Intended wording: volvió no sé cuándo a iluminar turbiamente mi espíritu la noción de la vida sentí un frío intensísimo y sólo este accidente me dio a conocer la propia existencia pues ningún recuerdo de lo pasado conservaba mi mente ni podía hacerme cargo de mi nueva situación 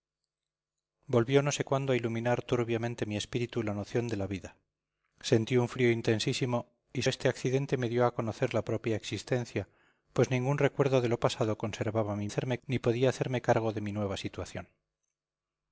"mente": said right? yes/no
no